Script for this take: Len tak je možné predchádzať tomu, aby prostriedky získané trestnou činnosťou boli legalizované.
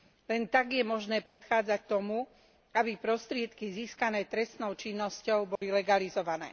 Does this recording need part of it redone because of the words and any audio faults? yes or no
yes